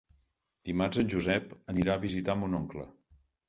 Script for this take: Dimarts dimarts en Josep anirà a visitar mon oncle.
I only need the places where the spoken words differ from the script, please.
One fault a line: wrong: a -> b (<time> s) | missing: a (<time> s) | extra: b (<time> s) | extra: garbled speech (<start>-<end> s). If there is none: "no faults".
missing: dimarts (1.0 s)